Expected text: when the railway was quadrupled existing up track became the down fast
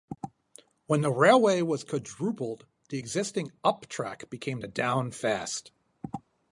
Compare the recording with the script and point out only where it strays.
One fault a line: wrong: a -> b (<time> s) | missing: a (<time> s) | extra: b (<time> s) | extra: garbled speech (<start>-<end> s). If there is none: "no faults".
extra: the (2.9 s)